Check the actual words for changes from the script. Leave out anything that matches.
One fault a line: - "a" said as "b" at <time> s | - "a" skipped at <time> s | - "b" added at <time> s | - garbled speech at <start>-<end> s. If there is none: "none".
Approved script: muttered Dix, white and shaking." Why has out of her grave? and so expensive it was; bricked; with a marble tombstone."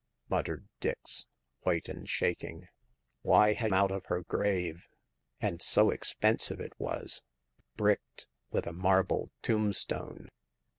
none